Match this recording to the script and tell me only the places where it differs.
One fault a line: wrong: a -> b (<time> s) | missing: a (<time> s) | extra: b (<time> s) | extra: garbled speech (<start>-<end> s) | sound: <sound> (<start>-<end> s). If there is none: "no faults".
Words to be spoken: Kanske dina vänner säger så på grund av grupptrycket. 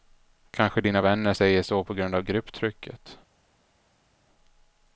no faults